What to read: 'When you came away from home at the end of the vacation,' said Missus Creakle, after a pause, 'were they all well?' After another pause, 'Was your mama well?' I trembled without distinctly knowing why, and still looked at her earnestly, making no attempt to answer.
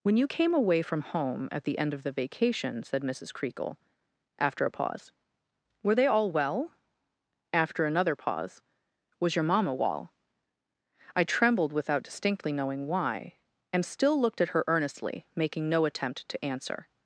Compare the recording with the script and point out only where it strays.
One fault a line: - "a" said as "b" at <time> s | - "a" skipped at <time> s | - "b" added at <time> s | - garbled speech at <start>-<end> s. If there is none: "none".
none